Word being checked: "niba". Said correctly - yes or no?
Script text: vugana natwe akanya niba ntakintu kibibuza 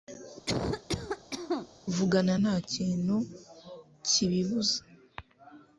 no